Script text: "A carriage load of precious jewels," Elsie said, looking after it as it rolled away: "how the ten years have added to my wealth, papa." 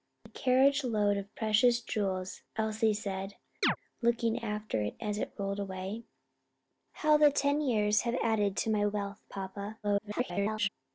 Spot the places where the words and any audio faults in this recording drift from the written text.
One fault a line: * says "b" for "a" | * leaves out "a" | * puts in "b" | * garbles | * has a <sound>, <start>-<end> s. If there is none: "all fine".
* has a chirp, 3.6-3.8 s
* garbles